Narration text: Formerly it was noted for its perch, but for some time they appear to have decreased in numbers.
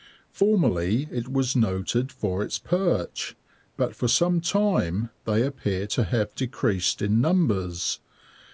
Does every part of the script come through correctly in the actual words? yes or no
yes